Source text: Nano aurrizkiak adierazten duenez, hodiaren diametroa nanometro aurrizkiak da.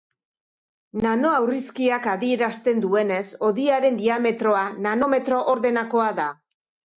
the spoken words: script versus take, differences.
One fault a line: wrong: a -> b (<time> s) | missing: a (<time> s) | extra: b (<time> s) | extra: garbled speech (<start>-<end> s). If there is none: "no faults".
wrong: aurrizkiak -> ordenakoa (5.6 s)